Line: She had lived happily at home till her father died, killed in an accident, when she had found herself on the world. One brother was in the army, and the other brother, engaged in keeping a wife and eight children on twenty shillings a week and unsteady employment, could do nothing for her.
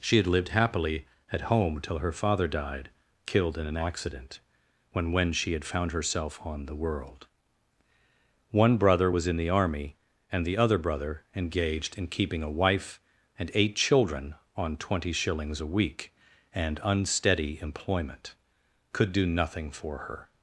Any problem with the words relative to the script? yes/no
yes